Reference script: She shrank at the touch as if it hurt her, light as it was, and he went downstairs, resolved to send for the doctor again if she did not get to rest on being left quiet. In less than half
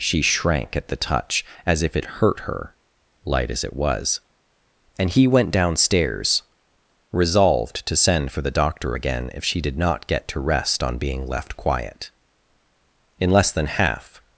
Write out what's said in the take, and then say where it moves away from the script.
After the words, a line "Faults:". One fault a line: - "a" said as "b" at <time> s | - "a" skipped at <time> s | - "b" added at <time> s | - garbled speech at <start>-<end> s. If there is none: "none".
She shrank at the touch as if it hurt her, light as it was, and he went downstairs, resolved to send for the doctor again if she did not get to rest on being left quiet. In less than half
Faults:
none